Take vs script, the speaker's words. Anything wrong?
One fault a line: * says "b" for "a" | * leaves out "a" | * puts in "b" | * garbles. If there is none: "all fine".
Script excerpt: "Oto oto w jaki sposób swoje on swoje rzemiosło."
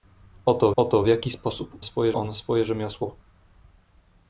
all fine